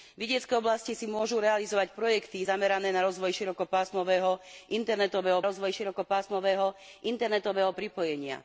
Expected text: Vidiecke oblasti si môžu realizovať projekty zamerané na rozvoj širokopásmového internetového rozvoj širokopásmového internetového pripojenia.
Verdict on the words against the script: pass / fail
pass